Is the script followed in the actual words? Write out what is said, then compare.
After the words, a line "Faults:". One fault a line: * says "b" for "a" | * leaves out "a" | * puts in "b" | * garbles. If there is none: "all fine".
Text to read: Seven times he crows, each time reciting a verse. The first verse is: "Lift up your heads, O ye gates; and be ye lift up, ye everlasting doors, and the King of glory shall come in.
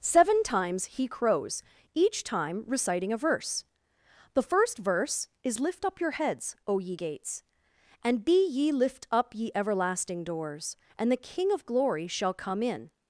Seven times he crows, each time reciting a verse. The first verse is: "Lift up your heads, O ye gates; and be ye lift up, ye everlasting doors, and the King of glory shall come in.
Faults:
all fine